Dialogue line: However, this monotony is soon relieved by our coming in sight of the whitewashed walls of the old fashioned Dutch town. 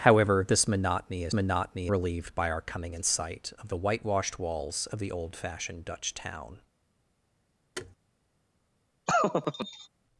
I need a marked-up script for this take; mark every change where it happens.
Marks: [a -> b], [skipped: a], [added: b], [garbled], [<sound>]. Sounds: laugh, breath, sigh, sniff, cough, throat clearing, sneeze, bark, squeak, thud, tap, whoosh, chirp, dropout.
However, this monotony is [soon -> monotony] relieved by our coming in sight of the whitewashed walls of the old fashioned Dutch town. [thud] [laugh]